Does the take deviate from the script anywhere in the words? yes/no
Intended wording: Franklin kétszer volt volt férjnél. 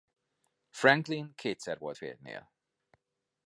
yes